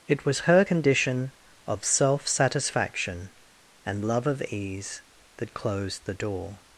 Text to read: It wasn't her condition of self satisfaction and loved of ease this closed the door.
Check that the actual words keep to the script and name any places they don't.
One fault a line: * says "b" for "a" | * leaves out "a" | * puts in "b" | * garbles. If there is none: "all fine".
* says "was" for "wasn't"
* says "love" for "loved"
* says "that" for "this"